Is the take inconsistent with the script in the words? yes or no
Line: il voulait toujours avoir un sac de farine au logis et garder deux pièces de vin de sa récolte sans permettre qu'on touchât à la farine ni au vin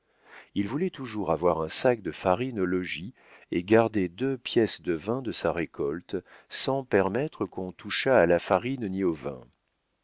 no